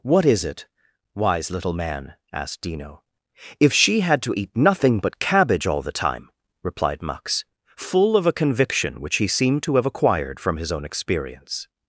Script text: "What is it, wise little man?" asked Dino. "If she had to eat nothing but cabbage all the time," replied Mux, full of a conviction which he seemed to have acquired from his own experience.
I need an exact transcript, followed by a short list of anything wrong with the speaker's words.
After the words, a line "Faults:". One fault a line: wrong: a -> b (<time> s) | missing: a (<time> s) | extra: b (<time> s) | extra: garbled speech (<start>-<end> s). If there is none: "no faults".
"What is it, wise little man?" asked Dino. "If she had to eat nothing but cabbage all the time," replied Mux, full of a conviction which he seemed to have acquired from his own experience.
Faults:
no faults